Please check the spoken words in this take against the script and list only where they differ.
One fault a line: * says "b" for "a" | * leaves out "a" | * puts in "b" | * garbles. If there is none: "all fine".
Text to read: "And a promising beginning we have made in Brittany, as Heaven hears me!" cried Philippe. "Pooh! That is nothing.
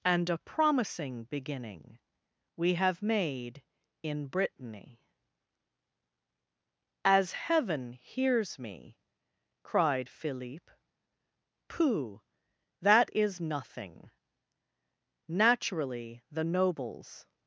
* puts in "Naturally the nobles"